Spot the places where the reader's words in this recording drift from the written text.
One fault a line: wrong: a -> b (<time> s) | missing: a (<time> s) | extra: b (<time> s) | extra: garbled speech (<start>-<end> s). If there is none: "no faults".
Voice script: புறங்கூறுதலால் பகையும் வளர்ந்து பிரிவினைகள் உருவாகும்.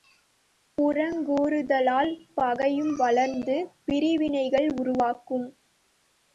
no faults